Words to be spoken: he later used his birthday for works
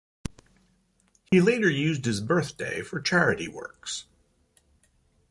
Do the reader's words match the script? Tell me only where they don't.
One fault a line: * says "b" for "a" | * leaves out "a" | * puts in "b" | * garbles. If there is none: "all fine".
* puts in "charity"